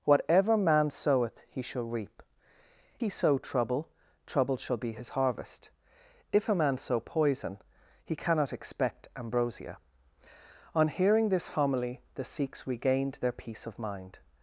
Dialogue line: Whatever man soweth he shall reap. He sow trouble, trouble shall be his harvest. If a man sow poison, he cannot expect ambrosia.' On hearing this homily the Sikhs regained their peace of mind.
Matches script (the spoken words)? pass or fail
pass